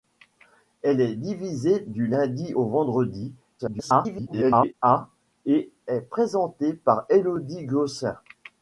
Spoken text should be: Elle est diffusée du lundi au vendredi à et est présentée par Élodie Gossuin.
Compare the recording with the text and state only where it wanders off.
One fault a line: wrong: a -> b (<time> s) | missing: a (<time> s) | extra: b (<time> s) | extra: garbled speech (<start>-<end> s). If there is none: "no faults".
extra: garbled speech (3.6-4.7 s)